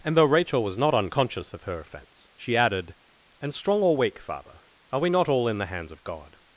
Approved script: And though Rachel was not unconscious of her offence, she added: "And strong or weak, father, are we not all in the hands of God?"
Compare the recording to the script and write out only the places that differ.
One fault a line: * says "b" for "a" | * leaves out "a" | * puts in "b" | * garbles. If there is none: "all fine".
all fine